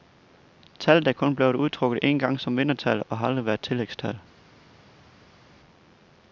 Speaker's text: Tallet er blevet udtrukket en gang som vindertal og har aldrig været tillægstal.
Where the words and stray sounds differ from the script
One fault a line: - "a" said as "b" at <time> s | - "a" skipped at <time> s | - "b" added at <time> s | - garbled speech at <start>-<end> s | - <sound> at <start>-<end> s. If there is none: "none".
- "kun" added at 1.1 s